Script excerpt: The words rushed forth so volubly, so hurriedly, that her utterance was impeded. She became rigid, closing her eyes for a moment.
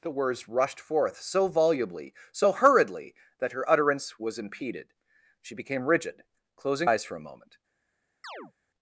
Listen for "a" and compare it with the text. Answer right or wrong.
right